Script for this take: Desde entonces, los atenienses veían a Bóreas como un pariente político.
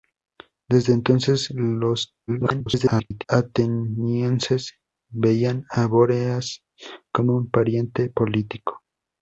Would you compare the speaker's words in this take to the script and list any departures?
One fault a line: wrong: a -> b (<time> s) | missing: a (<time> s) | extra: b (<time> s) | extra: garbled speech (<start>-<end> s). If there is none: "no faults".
extra: garbled speech (2.3-3.2 s)